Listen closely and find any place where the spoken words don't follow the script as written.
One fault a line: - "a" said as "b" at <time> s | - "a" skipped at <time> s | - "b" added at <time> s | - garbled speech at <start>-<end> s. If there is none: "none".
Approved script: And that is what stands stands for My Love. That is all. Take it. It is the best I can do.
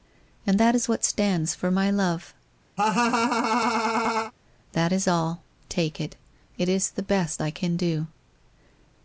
- "stands" skipped at 1.5 s